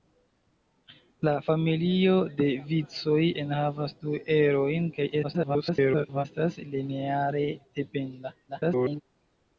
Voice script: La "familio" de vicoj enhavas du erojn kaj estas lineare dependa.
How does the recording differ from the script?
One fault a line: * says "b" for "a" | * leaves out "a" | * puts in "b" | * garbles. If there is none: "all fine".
* garbles
* garbles